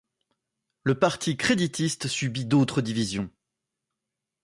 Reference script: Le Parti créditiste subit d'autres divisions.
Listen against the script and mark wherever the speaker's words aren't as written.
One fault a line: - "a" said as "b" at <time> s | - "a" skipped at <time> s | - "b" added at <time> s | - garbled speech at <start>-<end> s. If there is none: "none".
none